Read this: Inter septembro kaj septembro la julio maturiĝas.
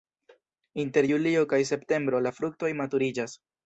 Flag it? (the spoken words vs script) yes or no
yes